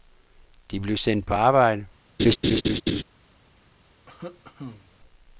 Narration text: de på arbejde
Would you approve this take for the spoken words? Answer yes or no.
no